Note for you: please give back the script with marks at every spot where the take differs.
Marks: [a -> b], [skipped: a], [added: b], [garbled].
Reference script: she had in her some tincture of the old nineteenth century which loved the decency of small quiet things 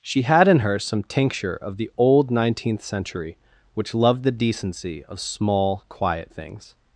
she had in her some tincture of the old nineteenth century which loved the decency of small quiet things